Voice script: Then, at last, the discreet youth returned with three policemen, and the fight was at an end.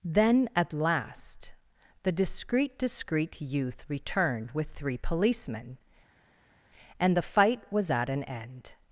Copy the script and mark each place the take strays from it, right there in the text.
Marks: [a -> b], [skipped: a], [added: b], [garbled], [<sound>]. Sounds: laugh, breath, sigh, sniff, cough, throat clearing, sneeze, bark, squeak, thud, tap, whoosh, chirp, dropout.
Then, at last, the discreet [added: discreet] youth returned with three policemen, and the fight was at an end.